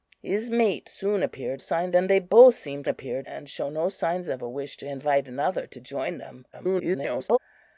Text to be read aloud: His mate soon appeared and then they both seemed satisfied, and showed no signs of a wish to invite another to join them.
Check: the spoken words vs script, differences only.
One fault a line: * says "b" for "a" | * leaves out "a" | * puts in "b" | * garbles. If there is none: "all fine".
* says "signs" for "and"
* says "appeared" for "satisfied"
* garbles